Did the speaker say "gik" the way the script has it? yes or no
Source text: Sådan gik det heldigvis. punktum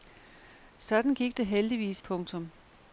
yes